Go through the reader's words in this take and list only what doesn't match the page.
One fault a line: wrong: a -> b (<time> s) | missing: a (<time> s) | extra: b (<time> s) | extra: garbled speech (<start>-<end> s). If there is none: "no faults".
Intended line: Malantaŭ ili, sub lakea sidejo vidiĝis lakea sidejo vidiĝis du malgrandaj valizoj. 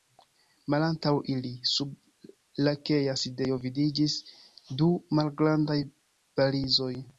missing: lakea sidejo vidiĝis (4.2 s)